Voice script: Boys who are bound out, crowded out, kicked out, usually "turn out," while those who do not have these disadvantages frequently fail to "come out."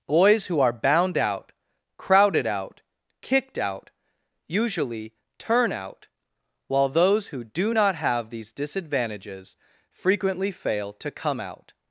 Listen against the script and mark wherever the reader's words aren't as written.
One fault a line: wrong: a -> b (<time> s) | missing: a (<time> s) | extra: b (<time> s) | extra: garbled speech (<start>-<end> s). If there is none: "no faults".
no faults